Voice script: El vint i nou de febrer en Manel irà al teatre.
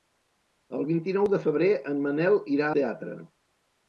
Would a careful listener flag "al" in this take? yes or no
yes